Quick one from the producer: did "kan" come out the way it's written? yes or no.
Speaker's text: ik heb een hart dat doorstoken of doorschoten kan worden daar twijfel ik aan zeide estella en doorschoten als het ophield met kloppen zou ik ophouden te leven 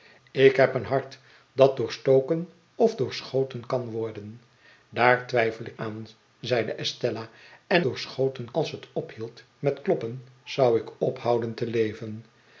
yes